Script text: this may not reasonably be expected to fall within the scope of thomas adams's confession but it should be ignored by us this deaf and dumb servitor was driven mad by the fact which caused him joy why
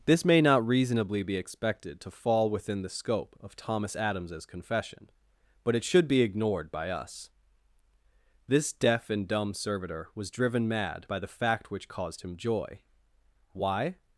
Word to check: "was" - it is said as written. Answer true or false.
true